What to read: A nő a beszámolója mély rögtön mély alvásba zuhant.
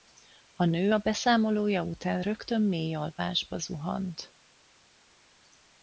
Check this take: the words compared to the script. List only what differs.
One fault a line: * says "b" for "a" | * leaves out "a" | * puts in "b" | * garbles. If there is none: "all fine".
* says "után" for "mély"